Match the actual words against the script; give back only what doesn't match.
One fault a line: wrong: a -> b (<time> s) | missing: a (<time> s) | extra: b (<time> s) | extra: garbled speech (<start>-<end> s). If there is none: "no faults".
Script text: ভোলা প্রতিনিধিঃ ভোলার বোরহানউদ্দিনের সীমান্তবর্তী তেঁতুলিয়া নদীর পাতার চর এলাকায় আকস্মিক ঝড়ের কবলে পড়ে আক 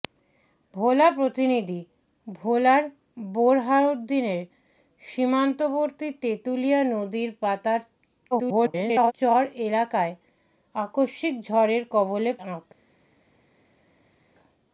extra: garbled speech (8.3-9.1 s)
missing: পড়ে (12.3 s)